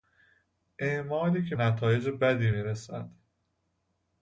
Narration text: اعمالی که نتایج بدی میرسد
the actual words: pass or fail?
pass